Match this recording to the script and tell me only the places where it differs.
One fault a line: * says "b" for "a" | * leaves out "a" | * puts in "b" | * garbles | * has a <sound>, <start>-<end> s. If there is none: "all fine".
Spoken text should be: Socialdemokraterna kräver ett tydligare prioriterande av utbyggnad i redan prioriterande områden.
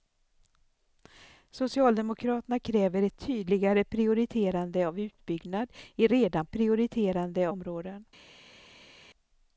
all fine